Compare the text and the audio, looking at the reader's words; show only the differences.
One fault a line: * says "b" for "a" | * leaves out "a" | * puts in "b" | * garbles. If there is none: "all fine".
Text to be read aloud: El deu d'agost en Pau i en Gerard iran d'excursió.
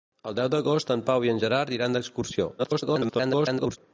* garbles